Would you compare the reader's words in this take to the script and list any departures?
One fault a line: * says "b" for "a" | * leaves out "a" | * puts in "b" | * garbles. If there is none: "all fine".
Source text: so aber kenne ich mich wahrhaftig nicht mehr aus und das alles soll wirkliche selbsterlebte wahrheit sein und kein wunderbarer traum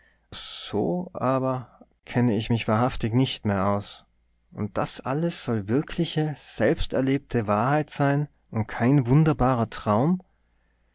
all fine